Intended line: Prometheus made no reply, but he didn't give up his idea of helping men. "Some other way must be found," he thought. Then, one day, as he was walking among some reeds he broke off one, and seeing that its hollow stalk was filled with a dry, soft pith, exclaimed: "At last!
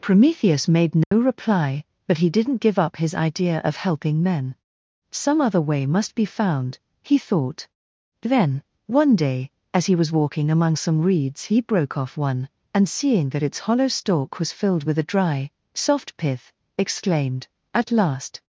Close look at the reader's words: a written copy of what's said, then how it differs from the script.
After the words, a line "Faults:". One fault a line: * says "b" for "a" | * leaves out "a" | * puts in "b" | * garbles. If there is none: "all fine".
Prometheus made no reply, but he didn't give up his idea of helping men. "Some other way must be found," he thought. Then, one day, as he was walking among some reeds he broke off one, and seeing that its hollow stalk was filled with a dry, soft pith, exclaimed: "At last!
Faults:
all fine